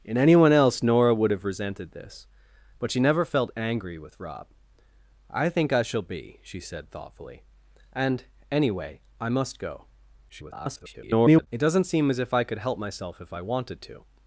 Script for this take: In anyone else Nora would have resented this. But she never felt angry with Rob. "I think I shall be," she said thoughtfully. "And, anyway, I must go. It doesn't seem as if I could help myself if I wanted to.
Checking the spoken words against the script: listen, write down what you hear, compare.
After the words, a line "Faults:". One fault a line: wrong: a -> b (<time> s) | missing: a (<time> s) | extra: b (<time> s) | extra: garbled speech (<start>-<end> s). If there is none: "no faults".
In anyone else Nora would have resented this. But she never felt angry with Rob. "I think I shall be," she said thoughtfully. "And, anyway, I must go. [garbled] It doesn't seem as if I could help myself if I wanted to.
Faults:
extra: garbled speech (10.3-11.5 s)